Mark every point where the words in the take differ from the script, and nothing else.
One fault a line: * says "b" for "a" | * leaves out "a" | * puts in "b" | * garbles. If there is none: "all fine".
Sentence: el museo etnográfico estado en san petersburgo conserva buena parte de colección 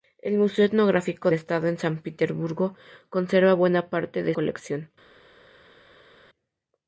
all fine